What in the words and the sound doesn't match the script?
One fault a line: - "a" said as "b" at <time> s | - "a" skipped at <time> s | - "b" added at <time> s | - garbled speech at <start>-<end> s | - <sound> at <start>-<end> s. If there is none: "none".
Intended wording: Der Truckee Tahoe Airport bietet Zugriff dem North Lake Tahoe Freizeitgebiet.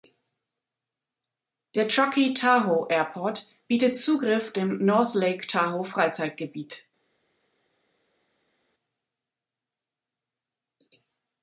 none